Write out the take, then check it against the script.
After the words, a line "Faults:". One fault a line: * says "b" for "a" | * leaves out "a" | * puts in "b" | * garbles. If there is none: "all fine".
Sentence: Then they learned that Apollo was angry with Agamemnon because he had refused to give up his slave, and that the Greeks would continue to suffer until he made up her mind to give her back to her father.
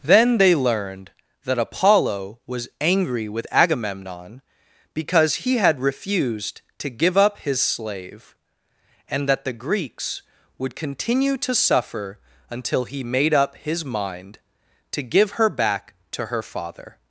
Then they learned that Apollo was angry with Agamemnon because he had refused to give up his slave, and that the Greeks would continue to suffer until he made up his mind to give her back to her father.
Faults:
* says "his" for "her"